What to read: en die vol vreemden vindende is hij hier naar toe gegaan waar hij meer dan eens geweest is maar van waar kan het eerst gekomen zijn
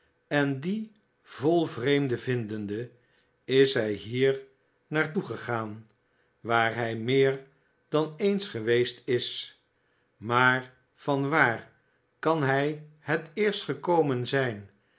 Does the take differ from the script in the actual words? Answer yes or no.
yes